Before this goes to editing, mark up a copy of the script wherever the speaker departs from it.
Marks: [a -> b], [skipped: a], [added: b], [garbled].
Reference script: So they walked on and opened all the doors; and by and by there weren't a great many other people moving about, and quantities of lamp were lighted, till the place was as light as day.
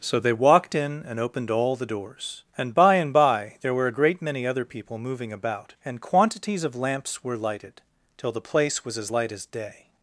So they walked [on -> in] and opened all the doors; and by and by there [weren't -> were] a great many other people moving about, and quantities of [lamp -> lamps] were lighted, till the place was as light as day.